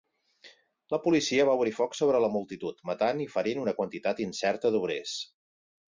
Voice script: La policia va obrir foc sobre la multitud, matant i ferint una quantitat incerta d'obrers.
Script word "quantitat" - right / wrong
right